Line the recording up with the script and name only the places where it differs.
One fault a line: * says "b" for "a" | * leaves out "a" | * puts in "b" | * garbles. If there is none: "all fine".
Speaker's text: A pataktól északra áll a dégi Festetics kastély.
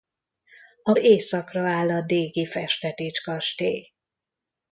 * leaves out "pataktól"